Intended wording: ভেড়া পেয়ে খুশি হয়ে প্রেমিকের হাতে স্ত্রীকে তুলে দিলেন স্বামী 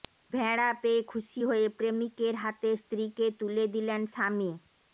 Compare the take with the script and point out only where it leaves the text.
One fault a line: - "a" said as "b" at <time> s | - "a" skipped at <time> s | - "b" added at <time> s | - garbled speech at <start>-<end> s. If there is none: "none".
none